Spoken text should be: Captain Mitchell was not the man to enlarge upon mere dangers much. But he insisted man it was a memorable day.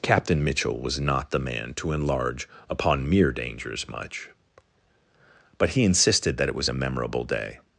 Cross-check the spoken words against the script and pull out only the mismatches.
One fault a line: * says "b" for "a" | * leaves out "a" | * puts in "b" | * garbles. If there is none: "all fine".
* says "that" for "man"